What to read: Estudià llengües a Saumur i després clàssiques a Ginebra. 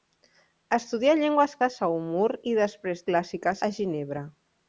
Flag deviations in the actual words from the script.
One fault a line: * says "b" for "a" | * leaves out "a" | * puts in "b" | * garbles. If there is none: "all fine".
all fine